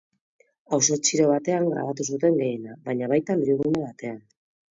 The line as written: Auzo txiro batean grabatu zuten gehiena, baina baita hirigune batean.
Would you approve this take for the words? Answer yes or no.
yes